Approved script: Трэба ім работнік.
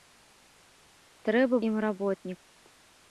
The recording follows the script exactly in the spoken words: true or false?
true